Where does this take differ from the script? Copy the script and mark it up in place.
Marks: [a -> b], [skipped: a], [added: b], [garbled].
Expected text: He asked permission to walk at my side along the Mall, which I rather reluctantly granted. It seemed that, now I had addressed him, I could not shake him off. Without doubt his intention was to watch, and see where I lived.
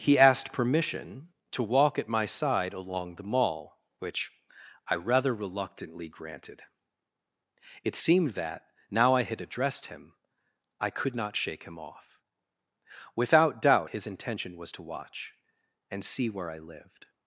He asked permission to walk at my side along the Mall, which I rather reluctantly granted. It seemed that, now I had addressed him, I could not shake him off. Without doubt his intention was to watch, and see where I lived.